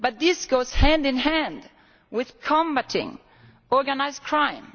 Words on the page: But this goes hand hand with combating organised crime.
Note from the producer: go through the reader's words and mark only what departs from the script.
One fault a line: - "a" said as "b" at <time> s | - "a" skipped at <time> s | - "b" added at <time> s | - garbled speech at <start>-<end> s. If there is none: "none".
- "in" added at 1.0 s